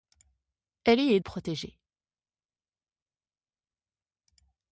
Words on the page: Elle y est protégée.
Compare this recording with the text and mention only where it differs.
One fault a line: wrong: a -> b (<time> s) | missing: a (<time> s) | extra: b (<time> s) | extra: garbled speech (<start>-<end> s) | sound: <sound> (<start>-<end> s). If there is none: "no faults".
no faults